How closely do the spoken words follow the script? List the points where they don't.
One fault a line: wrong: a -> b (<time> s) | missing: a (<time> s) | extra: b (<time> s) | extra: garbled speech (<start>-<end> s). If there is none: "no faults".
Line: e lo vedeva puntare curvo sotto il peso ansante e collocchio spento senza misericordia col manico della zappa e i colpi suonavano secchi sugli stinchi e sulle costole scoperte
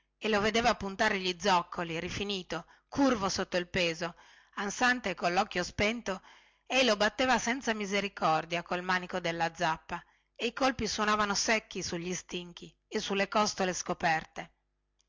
extra: gli zoccoli rifinito (1.2 s)
extra: ei lo batteva (6.7 s)